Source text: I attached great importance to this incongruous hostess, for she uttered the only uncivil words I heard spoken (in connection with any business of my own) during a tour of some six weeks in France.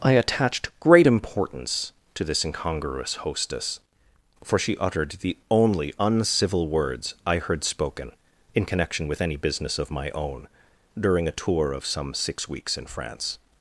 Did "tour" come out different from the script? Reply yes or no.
no